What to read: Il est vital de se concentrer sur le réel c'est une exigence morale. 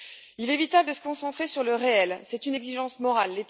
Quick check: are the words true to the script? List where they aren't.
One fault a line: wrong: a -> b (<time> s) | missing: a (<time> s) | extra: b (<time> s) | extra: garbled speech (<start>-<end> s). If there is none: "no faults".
no faults